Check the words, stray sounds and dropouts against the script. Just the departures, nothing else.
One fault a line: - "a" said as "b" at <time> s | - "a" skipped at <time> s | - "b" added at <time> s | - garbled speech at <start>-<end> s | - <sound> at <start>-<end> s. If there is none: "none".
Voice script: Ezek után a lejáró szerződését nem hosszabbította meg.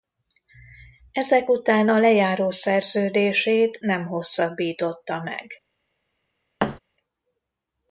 - thud at 6.6-6.8 s